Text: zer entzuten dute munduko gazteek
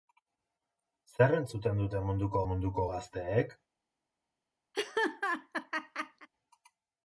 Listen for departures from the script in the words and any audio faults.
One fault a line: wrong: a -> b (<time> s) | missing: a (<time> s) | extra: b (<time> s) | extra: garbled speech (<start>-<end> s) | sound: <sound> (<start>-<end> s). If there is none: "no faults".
extra: munduko (2.5 s)
sound: laugh (4.7-6.3 s)